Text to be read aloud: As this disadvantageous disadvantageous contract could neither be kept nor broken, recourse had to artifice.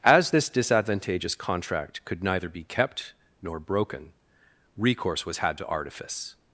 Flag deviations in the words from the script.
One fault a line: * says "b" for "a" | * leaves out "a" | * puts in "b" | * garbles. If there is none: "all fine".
* leaves out "disadvantageous"
* puts in "was"